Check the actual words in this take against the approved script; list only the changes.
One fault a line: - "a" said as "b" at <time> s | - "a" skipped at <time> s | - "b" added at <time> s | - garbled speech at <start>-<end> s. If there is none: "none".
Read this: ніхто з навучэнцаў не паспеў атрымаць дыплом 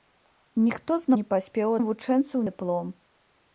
- "навучэнцаў" skipped at 1.1 s
- "атрымаць" said as "навучэнцаў" at 1.8 s